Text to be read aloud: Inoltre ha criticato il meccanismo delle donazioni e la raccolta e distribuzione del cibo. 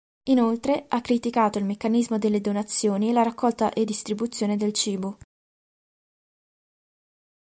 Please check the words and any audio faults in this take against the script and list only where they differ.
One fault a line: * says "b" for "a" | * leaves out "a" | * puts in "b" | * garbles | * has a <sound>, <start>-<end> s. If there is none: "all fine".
all fine